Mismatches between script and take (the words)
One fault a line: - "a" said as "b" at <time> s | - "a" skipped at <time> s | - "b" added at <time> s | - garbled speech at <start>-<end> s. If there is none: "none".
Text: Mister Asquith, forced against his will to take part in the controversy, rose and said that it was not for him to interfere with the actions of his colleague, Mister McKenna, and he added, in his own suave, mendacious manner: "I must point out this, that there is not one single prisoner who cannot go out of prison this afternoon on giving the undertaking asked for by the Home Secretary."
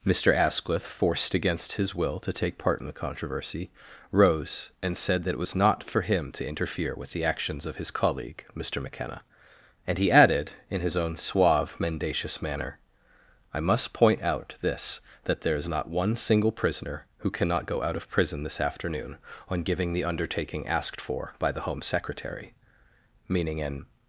- "Meaning an" added at 23.3 s